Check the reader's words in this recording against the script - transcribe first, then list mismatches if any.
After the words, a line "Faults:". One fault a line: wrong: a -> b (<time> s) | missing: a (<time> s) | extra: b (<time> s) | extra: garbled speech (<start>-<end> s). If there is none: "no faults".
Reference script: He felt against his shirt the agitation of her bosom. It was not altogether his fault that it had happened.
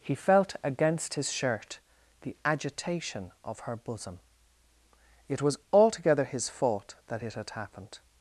He felt against his shirt the agitation of her bosom. It was altogether his fault that it had happened.
Faults:
missing: not (5.6 s)